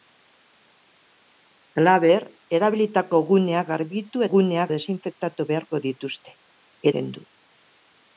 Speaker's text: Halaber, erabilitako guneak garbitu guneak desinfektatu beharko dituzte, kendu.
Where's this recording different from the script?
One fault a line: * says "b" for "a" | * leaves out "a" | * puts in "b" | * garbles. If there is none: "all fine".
all fine